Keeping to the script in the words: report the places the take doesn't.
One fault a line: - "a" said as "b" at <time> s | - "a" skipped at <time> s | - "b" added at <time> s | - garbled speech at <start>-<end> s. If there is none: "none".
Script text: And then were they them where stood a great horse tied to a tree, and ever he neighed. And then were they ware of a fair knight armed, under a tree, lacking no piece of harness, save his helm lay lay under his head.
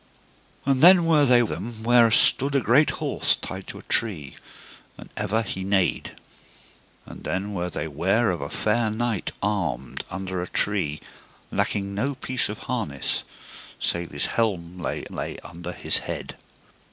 none